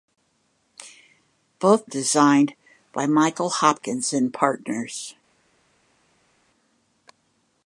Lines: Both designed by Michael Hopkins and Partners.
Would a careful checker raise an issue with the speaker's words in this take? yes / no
no